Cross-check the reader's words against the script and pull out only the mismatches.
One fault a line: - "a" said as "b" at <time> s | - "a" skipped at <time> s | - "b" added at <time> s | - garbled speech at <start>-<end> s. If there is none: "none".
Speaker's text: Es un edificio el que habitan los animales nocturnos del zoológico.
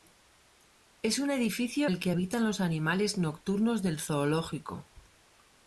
none